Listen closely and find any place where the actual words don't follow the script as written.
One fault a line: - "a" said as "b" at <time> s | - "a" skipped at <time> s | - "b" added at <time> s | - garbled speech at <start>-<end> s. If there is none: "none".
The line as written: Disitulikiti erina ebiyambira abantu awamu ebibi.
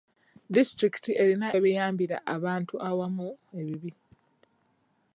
none